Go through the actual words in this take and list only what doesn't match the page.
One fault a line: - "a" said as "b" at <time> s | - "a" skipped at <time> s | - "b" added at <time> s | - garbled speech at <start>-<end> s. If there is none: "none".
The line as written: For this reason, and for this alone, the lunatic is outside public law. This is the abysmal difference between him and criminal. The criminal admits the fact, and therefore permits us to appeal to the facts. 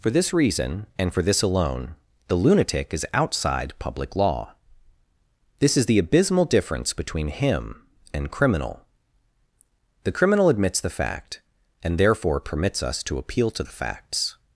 none